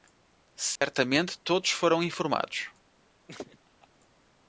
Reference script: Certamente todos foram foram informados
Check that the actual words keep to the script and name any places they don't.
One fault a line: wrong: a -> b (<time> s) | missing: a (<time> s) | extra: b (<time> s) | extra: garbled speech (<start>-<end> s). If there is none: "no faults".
missing: foram (2.0 s)